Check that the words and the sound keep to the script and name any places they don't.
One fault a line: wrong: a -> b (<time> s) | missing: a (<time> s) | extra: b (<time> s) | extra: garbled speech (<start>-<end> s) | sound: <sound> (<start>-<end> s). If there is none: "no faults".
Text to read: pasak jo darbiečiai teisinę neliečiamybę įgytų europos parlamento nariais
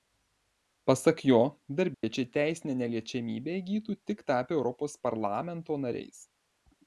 sound: dropout (1.9-2.0 s)
extra: tik tapę (4.1 s)